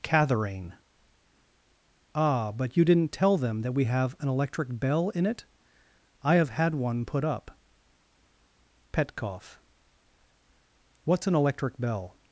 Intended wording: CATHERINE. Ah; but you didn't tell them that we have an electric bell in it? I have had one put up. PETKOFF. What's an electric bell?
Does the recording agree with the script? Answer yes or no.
yes